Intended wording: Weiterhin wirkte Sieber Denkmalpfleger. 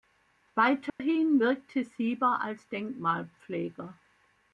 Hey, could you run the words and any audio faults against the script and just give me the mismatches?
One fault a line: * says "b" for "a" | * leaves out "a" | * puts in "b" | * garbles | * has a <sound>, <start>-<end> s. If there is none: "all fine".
* has a dropout, 0.9-1.0 s
* puts in "als"